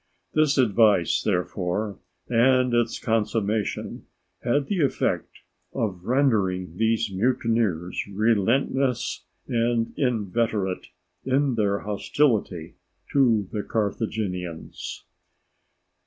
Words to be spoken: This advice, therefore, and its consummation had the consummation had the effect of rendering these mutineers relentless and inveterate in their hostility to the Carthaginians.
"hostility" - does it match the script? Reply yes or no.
yes